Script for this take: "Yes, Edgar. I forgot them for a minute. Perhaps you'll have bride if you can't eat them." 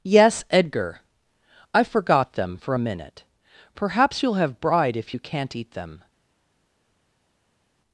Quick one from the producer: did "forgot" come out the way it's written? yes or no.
yes